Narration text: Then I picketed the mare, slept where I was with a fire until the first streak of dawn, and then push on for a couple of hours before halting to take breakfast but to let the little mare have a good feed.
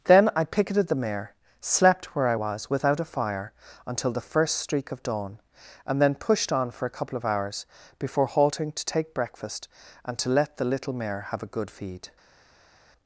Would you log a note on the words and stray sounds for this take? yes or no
yes